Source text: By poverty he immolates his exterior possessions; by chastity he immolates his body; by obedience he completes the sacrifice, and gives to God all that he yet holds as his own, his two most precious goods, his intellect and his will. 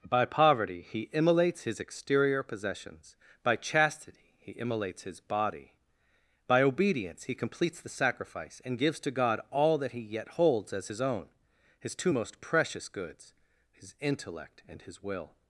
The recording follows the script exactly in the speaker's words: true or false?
true